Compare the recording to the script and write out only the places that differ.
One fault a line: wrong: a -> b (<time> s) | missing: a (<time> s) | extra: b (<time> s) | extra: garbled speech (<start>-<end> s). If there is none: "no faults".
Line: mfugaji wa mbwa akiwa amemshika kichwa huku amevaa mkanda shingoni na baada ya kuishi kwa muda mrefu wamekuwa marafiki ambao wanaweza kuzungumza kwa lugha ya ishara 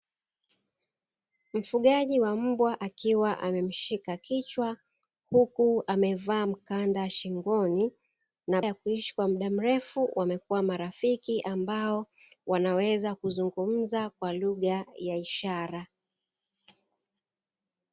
missing: baada (8.6 s)